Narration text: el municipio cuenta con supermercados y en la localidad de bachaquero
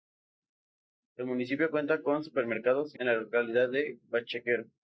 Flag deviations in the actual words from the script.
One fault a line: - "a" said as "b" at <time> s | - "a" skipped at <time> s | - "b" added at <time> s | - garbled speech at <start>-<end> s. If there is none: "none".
none